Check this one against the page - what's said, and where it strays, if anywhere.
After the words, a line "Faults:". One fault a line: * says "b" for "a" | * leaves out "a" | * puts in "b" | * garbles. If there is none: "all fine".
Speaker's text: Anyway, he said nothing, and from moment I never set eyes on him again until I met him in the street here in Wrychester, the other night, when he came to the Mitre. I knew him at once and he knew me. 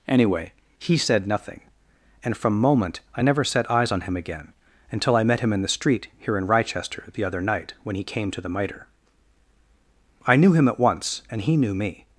Anyway, he said nothing, and from moment I never set eyes on him again until I met him in the street here in Wrychester, the other night, when he came to the Mitre. I knew him at once and he knew me.
Faults:
all fine